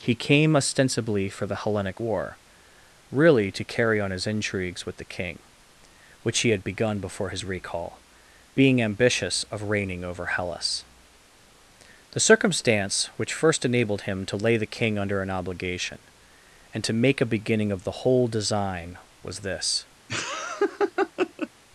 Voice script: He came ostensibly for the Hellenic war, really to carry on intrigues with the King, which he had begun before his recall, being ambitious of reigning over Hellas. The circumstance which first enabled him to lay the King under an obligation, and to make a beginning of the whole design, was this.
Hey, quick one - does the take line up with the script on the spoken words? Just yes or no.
no